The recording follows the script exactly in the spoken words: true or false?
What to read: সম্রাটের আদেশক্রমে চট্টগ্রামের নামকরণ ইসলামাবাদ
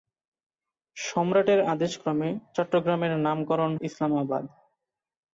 true